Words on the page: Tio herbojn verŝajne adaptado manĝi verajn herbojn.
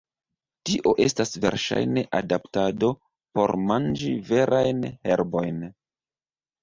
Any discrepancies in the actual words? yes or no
yes